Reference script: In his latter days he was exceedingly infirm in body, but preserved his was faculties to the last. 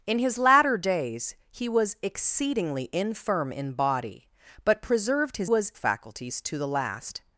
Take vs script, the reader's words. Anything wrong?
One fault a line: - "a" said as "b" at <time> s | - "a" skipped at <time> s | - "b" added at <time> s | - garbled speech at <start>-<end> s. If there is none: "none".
none